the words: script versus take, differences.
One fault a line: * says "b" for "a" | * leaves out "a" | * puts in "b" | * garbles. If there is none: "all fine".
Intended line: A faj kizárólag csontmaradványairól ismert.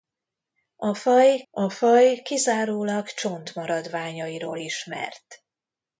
* puts in "a faj"